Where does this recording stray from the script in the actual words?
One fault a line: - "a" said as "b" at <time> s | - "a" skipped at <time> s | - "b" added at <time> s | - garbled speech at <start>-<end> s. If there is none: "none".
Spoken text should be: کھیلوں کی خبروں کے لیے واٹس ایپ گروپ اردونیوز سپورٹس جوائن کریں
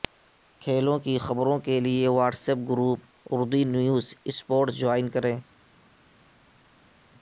none